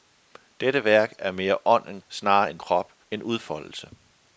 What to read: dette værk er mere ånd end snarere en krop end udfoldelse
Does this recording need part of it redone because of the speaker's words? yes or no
no